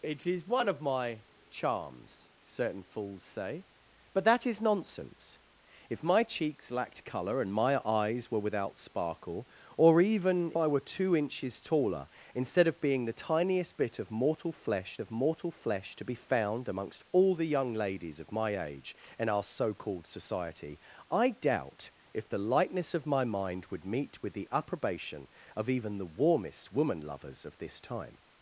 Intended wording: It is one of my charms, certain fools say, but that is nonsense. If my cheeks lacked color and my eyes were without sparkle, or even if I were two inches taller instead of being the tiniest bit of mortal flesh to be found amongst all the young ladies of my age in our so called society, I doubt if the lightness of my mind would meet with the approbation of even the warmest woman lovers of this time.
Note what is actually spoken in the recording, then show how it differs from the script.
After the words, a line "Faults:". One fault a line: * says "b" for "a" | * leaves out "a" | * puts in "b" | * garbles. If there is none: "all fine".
It is one of my charms, certain fools say, but that is nonsense. If my cheeks lacked color and my eyes were without sparkle, or even I were two inches taller instead of being the tiniest bit of mortal flesh of mortal flesh to be found amongst all the young ladies of my age in our so called society, I doubt if the lightness of my mind would meet with the approbation of even the warmest woman lovers of this time.
Faults:
* leaves out "if"
* puts in "of mortal flesh"